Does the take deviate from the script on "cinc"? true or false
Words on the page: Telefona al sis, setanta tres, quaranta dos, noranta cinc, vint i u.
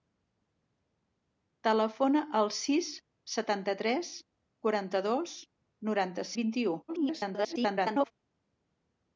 true